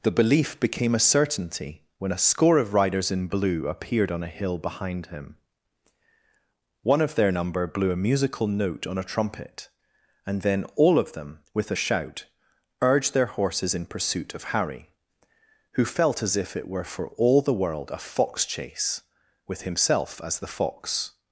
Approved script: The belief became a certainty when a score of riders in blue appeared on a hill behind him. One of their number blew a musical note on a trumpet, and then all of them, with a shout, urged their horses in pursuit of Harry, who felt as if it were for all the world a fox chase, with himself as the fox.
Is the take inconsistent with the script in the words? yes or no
no